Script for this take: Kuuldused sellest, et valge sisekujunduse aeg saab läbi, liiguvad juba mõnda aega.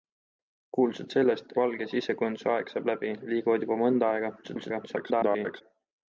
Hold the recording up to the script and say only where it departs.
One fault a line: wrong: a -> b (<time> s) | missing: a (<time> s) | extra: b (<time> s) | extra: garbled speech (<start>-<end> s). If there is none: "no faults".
missing: et (1.5 s)
extra: garbled speech (4.4-5.6 s)